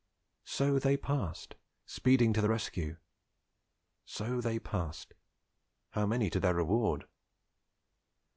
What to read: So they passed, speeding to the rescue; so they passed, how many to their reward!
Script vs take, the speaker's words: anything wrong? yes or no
no